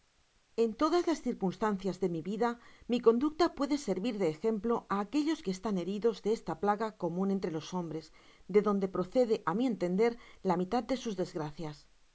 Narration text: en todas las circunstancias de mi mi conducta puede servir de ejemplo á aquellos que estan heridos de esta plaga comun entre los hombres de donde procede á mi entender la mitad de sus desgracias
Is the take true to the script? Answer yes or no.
no